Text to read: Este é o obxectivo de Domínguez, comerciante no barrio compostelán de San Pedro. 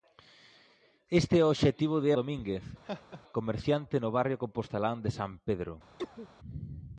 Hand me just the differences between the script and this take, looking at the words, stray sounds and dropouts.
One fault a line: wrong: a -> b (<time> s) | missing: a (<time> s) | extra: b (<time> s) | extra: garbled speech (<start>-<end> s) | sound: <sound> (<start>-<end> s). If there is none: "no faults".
sound: laugh (2.8-3.2 s)
sound: cough (6.0-6.3 s)